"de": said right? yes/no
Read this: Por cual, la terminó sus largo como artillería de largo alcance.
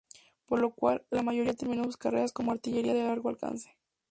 yes